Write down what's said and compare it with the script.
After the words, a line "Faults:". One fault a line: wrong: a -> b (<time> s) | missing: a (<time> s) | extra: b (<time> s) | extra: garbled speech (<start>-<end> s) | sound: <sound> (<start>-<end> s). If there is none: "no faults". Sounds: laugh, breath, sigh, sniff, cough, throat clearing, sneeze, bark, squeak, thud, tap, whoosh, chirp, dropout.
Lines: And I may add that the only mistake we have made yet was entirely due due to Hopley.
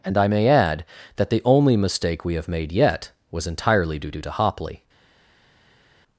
And I may add that the only mistake we have made yet was entirely due due to Hopley.
Faults:
no faults